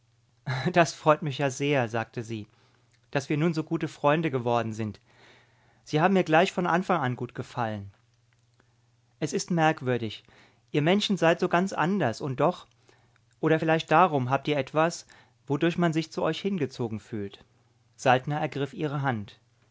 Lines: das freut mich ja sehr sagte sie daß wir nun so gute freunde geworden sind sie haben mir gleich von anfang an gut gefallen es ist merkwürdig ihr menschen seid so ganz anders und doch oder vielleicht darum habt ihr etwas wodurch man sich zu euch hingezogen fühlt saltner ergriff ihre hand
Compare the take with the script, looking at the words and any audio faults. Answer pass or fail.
pass